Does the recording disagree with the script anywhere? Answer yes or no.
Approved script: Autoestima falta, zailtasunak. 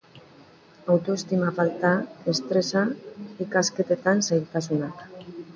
yes